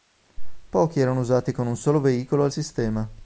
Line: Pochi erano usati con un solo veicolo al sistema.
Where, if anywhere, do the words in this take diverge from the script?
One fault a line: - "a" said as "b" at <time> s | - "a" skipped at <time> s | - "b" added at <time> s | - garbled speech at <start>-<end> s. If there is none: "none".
none